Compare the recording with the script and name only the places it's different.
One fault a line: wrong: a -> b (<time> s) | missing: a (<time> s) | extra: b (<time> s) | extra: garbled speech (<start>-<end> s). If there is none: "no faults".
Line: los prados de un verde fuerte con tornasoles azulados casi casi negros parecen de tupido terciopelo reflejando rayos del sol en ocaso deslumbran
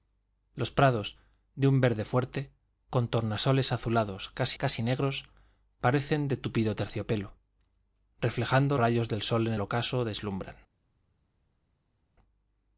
no faults